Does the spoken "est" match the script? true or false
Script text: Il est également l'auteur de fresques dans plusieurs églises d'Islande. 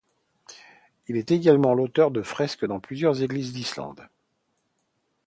true